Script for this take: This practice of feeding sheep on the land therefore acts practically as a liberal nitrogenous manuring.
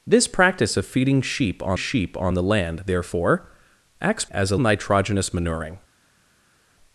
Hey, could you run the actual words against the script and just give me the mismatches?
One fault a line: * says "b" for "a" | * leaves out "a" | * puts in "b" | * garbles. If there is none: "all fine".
* puts in "sheep on"
* leaves out "practically"
* leaves out "liberal"